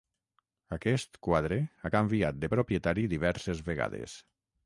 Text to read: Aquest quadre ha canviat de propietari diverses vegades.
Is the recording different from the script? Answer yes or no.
no